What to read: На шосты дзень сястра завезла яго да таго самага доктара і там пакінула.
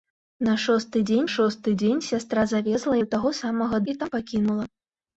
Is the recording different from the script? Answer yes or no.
yes